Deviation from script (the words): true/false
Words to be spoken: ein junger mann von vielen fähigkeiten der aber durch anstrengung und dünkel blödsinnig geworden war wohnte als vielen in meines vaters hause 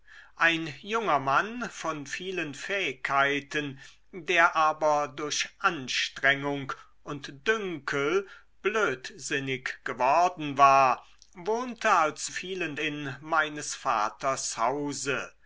false